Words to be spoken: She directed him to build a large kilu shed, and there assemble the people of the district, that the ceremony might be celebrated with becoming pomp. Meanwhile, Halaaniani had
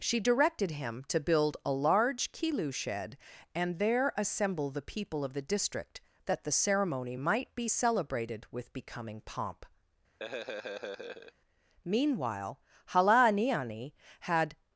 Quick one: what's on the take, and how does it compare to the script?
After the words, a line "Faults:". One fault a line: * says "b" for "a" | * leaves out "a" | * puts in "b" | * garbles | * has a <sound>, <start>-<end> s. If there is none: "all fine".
She directed him to build a large kilu shed, and there assemble the people of the district, that the ceremony might be celebrated with becoming pomp. Meanwhile, Halaaniani had
Faults:
* has a laugh, 10.2-11.3 s